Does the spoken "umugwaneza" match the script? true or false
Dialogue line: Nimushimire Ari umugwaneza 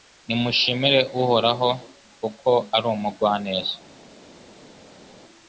true